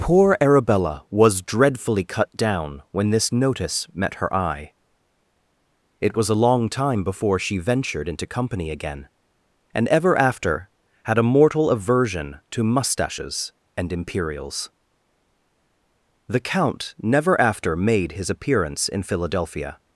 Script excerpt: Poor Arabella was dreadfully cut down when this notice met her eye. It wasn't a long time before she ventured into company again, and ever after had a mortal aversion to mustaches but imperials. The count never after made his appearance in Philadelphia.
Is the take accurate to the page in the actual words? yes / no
no